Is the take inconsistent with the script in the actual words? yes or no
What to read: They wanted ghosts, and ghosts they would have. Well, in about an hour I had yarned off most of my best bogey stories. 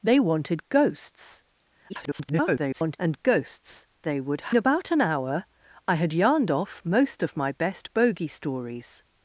yes